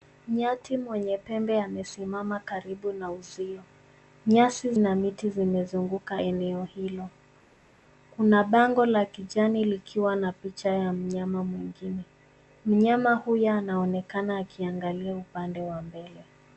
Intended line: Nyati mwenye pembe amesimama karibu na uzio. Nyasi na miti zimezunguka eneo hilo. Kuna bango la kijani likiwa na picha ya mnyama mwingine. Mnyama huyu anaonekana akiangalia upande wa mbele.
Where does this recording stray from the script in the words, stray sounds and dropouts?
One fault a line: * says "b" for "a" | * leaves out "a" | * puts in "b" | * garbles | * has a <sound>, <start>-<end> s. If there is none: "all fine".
all fine